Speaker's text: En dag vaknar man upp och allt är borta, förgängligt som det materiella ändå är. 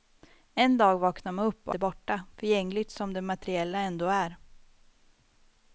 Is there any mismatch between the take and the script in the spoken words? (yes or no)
yes